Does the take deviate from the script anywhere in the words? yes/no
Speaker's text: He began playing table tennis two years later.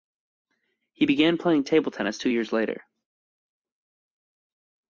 no